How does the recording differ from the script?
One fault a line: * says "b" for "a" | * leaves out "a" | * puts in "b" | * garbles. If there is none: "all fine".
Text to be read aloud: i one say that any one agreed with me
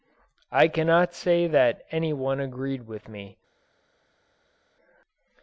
* says "cannot" for "one"